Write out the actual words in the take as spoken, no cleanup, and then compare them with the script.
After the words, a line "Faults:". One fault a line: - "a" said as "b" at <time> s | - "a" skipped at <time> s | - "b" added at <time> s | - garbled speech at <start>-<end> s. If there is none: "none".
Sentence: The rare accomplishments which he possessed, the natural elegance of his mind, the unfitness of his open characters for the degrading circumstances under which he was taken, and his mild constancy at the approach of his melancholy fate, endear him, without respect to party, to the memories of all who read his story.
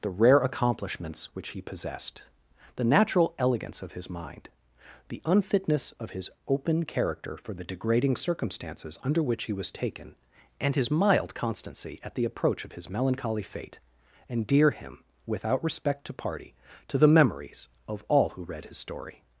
The rare accomplishments which he possessed, the natural elegance of his mind, the unfitness of his open character for the degrading circumstances under which he was taken, and his mild constancy at the approach of his melancholy fate, endear him, without respect to party, to the memories of all who read his story.
Faults:
- "characters" said as "character" at 6.8 s